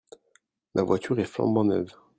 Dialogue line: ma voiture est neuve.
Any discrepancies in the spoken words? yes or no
yes